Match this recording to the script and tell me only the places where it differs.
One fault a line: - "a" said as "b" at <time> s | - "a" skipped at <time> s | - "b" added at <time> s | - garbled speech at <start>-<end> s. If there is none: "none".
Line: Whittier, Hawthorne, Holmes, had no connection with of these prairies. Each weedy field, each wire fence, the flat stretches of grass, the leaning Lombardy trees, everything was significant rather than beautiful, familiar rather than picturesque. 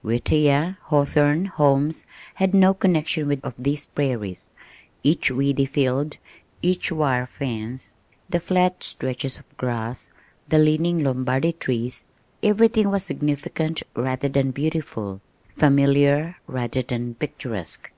none